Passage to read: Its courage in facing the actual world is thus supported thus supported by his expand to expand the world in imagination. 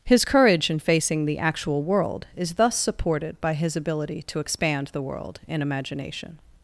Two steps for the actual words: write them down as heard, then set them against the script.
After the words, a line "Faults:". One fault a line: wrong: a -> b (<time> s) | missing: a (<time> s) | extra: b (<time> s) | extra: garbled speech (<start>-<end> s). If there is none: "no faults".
His courage in facing the actual world is thus supported by his ability to expand the world in imagination.
Faults:
wrong: Its -> His (0.1 s)
missing: thus supported (3.4 s)
wrong: expand -> ability (3.8 s)